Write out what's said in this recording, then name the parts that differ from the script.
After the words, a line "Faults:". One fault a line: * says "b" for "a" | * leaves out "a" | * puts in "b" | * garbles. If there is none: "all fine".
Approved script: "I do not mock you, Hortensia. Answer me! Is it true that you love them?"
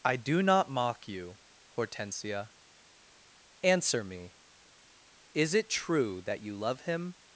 "I do not mock you, Hortensia. Answer me! Is it true that you love him?"
Faults:
* says "him" for "them"